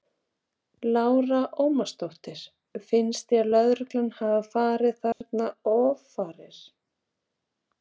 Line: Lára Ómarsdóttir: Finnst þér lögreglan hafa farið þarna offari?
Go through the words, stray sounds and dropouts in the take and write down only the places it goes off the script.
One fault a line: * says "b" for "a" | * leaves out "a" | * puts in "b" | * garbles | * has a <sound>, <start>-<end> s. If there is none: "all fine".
* has a dropout, 5.1-5.2 s